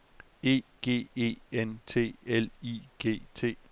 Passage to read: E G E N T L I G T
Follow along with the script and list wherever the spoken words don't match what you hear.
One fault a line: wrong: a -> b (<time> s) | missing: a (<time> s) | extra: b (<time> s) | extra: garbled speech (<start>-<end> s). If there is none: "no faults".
no faults